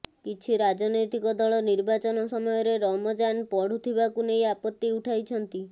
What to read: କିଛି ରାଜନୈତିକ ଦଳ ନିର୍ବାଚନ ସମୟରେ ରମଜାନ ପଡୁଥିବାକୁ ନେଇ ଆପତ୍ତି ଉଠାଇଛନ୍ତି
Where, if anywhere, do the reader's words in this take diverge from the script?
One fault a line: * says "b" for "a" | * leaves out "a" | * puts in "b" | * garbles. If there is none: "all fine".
all fine